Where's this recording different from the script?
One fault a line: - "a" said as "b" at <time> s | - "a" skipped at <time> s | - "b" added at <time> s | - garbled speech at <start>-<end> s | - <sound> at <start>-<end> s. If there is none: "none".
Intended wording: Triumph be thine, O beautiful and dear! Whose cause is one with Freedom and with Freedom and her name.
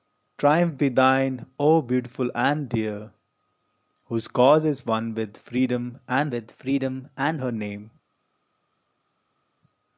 none